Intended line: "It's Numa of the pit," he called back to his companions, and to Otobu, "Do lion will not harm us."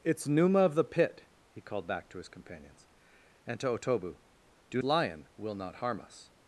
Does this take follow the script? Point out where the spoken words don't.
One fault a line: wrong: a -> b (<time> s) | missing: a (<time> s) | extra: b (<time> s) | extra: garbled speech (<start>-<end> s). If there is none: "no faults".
no faults